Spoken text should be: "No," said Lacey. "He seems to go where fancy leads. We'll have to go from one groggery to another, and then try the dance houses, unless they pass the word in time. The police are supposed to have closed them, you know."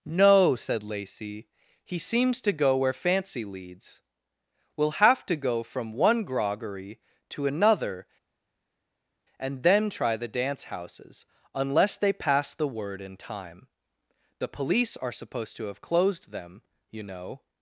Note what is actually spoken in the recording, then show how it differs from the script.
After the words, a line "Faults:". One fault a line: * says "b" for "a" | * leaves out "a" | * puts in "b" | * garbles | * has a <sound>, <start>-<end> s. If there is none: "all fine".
"No," said Lacey. "He seems to go where fancy leads. We'll have to go from one groggery to another, and then try the dance houses, unless they pass the word in time. The police are supposed to have closed them, you know."
Faults:
all fine